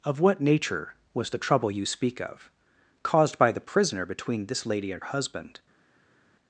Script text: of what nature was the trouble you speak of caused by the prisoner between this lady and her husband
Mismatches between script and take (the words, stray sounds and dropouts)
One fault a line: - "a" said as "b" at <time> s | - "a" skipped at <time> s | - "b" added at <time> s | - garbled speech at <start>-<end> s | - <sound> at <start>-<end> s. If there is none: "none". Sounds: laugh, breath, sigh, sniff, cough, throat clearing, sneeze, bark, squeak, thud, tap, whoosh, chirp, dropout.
- "her" skipped at 5.0 s